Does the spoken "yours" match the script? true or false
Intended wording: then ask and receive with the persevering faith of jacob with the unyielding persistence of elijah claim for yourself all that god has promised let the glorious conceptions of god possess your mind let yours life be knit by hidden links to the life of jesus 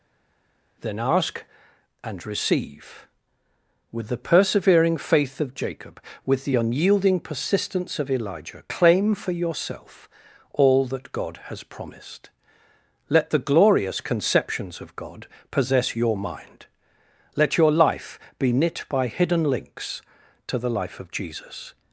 false